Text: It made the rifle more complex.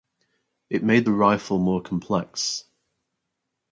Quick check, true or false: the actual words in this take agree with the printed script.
true